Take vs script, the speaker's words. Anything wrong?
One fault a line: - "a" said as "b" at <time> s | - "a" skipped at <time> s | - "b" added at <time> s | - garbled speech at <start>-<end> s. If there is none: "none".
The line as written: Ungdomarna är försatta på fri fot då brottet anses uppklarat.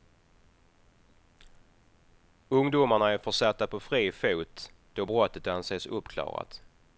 none